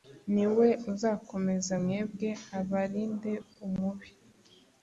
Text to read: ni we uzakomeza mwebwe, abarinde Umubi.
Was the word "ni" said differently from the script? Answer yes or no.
no